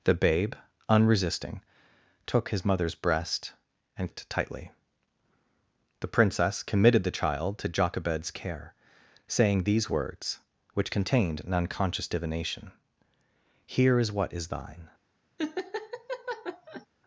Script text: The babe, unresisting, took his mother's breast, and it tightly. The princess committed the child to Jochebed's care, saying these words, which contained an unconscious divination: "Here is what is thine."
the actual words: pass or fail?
pass